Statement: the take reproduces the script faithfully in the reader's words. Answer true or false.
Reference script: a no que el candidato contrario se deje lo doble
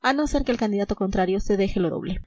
false